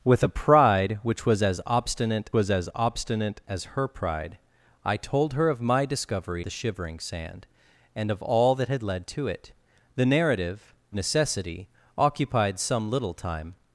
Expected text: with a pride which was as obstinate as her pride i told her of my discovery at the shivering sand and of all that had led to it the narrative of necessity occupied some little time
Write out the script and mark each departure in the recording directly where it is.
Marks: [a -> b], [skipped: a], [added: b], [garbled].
with a pride which was as obstinate [added: was] as [added: obstinate as] her pride i told her of my discovery [skipped: at] the shivering sand and of all that had led to it the narrative [skipped: of] necessity occupied some little time